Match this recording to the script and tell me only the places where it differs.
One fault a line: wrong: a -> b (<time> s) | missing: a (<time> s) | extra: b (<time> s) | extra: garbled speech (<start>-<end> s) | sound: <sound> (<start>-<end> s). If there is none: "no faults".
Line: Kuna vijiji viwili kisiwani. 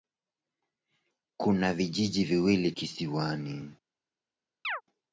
sound: chirp (4.6-4.8 s)